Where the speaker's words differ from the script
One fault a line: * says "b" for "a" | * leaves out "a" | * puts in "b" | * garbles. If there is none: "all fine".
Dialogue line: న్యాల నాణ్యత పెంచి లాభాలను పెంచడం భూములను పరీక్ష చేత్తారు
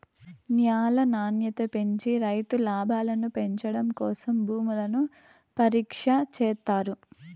* puts in "రైతు"
* puts in "కోసం"